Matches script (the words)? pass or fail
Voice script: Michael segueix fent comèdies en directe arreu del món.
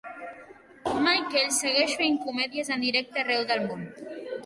pass